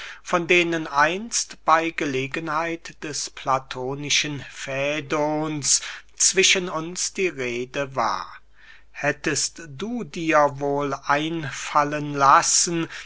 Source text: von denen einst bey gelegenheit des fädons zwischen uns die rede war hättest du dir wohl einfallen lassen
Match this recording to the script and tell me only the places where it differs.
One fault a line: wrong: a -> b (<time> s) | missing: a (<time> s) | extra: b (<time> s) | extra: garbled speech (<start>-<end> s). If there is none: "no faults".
extra: platonischen (3.3 s)